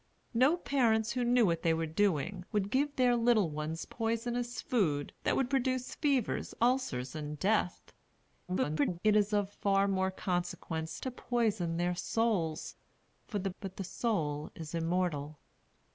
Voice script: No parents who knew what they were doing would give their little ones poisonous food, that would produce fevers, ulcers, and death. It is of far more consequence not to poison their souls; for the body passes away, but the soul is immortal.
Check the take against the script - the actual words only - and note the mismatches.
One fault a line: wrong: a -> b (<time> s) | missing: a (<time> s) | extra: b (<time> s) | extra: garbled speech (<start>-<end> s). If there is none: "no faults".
extra: garbled speech (8.5-9.0 s)
missing: not (11.0 s)
missing: body passes away (13.5 s)